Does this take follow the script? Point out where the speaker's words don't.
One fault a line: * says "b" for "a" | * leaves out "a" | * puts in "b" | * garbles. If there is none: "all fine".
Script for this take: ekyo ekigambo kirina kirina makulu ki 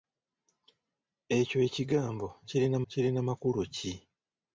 all fine